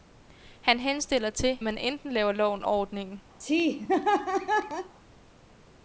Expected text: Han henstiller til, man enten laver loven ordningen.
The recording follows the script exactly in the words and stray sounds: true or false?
false